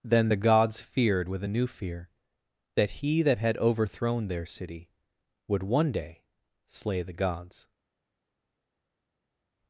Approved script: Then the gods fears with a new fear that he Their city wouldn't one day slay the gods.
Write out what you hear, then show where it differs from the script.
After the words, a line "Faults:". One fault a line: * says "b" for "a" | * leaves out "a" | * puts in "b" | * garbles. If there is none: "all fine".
Then the gods feared with a new fear that he that had overthrown Their city would one day slay the gods.
Faults:
* says "feared" for "fears"
* puts in "that had overthrown"
* says "would" for "wouldn't"